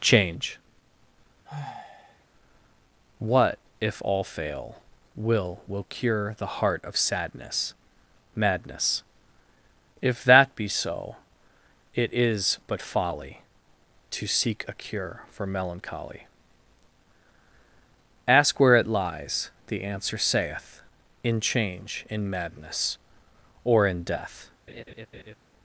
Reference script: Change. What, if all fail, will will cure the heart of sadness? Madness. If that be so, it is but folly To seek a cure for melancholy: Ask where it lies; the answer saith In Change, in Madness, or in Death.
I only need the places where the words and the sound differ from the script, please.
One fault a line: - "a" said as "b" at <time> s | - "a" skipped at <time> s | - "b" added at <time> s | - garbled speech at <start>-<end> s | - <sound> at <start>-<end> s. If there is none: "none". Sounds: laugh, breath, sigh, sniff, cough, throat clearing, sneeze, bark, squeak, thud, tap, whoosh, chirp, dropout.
- sigh at 1.5-2.3 s
- laugh at 24.7-25.4 s